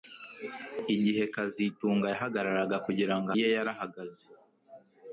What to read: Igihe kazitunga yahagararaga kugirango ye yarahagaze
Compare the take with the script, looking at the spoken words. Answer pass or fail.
pass